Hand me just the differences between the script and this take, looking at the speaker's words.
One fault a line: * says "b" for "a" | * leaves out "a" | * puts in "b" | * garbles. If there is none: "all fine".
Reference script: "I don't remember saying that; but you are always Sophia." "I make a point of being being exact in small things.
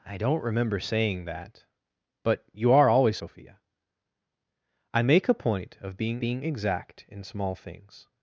all fine